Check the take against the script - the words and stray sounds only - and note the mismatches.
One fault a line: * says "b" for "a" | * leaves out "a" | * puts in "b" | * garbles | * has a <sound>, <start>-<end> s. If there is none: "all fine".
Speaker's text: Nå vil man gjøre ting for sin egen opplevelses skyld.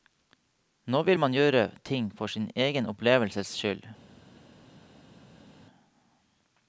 all fine